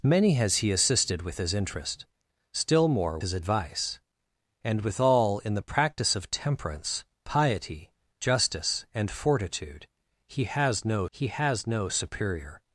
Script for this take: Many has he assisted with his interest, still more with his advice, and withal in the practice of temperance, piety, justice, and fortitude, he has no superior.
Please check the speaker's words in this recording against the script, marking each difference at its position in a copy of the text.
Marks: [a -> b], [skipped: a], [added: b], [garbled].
Many has he assisted with his interest, still more [skipped: with] his advice, and withal in the practice of temperance, piety, justice, and fortitude, he has no [added: he has no] superior.